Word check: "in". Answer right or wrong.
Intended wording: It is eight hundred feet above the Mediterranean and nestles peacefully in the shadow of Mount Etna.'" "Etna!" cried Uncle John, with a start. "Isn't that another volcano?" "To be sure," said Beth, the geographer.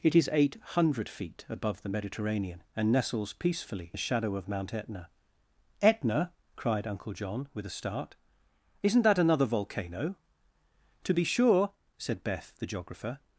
wrong